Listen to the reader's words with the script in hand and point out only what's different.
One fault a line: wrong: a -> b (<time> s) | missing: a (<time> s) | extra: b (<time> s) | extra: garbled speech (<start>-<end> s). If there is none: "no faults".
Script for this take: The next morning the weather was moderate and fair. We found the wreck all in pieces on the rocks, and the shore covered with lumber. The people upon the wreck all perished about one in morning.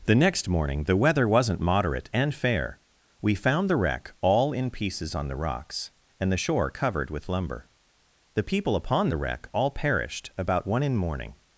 wrong: was -> wasn't (1.3 s)